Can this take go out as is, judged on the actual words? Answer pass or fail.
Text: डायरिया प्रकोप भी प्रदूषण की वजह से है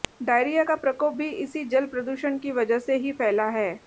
fail